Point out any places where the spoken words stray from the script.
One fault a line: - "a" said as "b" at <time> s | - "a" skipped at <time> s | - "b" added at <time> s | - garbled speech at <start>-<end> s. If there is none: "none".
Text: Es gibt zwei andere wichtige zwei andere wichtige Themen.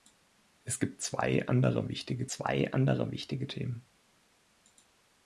none